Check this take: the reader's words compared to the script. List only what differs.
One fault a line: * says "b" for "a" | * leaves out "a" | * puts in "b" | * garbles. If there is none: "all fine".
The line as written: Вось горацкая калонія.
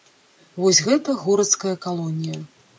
* puts in "гэта"